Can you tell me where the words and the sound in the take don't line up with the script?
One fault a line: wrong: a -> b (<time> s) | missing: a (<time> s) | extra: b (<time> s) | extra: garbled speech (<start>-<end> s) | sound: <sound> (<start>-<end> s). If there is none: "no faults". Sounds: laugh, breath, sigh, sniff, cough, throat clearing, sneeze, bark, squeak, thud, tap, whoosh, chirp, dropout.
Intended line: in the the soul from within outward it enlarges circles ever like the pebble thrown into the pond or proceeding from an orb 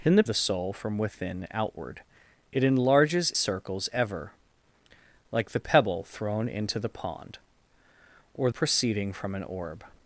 no faults